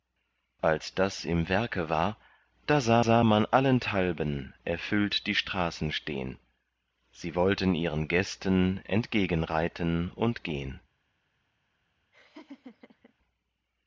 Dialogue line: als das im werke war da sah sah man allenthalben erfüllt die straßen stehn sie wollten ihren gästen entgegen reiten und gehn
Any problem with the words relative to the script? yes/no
no